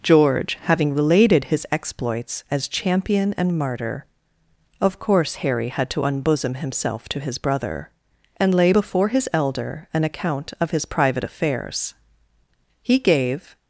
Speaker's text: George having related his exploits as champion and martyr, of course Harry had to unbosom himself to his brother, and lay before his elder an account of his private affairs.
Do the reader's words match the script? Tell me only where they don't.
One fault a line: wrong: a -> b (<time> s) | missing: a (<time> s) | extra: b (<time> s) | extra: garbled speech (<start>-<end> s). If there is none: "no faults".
extra: He gave (12.8 s)